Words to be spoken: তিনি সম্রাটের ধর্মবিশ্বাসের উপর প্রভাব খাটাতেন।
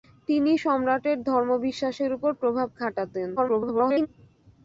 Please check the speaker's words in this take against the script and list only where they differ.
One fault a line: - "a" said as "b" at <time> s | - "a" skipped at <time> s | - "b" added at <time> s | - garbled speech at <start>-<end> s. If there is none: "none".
- garbled speech at 3.4-4.1 s